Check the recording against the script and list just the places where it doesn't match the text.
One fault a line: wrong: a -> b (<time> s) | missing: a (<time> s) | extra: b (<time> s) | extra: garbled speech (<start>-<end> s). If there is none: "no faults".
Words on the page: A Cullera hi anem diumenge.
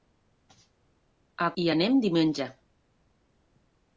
missing: Cullera (1.5 s)